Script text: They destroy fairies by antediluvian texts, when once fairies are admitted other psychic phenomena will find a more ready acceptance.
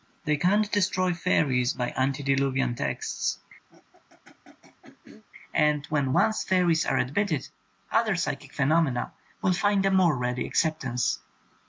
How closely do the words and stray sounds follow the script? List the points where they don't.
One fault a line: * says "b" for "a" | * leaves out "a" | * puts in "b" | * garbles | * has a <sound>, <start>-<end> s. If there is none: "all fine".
* puts in "can't"
* has a throat clearing, 3.7-5.2 s
* puts in "and"